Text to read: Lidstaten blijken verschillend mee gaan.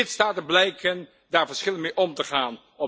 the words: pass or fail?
fail